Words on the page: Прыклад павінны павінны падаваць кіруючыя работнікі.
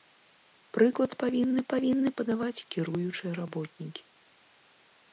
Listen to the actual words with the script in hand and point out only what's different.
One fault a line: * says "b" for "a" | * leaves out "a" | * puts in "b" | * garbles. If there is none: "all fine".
all fine